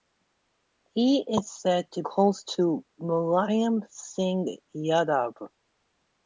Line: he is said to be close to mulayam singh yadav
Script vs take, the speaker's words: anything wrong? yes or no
yes